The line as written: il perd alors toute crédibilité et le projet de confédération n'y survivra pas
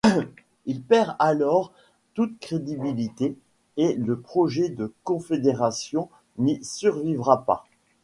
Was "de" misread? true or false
false